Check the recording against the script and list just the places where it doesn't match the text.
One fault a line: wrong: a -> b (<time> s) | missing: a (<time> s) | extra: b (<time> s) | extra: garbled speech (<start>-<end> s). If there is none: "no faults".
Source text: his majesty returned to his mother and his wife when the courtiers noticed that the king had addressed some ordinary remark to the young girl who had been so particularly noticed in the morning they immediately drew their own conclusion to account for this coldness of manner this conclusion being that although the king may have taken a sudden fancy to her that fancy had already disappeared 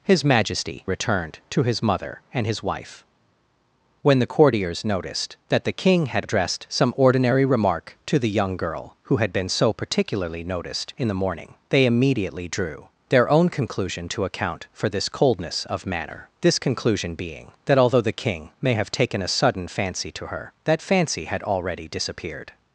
no faults